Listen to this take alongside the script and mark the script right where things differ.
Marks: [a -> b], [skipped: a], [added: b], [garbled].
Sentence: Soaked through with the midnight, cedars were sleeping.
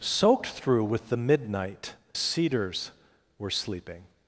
Soaked through with the midnight, cedars were sleeping.